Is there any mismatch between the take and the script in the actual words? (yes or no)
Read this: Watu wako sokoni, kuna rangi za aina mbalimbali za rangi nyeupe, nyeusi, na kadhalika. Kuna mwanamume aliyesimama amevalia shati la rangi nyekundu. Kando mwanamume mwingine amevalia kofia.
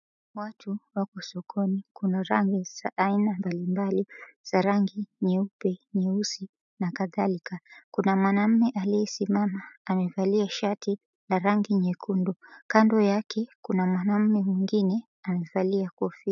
yes